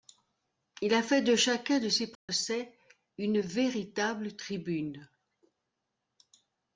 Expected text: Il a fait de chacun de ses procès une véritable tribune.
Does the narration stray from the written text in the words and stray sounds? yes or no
yes